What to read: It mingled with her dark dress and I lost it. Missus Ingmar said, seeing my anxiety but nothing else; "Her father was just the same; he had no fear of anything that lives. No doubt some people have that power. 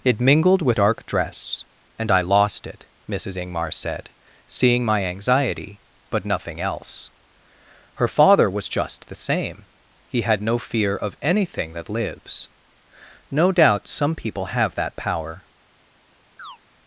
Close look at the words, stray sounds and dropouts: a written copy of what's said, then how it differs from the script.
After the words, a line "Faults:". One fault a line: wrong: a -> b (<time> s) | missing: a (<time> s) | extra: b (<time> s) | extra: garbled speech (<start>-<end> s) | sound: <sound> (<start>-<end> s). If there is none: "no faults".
It mingled with dark dress and I lost it. Missus Ingmar said, seeing my anxiety but nothing else; "Her father was just the same; he had no fear of anything that lives. No doubt some people have that power.
Faults:
missing: her (0.8 s)
sound: chirp (16.4-16.6 s)